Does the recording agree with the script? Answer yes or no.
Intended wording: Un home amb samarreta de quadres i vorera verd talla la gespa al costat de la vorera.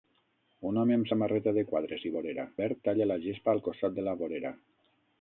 yes